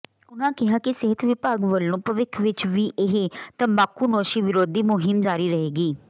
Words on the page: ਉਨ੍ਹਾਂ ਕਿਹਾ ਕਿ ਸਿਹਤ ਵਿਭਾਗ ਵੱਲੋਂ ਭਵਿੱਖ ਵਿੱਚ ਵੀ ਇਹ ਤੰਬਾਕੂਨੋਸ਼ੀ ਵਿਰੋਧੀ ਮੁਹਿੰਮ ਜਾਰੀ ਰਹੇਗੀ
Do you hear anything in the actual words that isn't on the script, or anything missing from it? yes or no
no